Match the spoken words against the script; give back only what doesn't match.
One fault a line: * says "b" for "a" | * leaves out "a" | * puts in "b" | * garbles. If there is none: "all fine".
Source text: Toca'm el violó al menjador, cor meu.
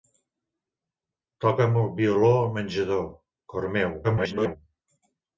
* garbles